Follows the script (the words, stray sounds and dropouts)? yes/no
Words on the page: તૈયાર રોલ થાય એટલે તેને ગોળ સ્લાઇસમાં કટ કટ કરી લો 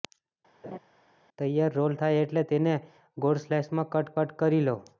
no